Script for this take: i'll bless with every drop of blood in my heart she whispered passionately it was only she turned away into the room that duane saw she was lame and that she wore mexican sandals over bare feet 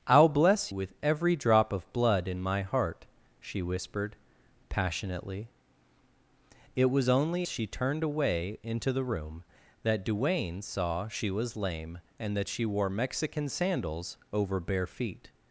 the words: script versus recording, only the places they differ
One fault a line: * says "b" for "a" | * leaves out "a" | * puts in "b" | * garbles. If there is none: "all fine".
all fine